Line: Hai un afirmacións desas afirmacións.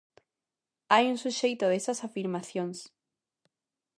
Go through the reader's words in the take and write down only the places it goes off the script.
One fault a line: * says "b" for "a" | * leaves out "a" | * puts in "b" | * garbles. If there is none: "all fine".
* says "suxeito" for "afirmacións"